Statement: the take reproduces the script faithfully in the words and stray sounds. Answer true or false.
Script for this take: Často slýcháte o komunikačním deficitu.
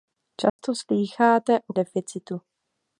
false